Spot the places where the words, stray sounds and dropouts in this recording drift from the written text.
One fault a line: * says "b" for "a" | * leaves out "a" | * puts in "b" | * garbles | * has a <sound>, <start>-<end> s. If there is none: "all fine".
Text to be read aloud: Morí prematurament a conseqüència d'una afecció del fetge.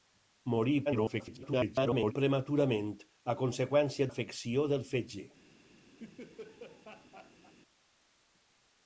* garbles
* leaves out "d'una"
* has a laugh, 6.0-7.5 s